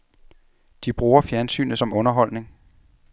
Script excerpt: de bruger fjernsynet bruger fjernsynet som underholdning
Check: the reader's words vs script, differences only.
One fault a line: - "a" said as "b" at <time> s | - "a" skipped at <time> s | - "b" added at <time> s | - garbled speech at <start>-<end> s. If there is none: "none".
- "bruger fjernsynet" skipped at 1.8 s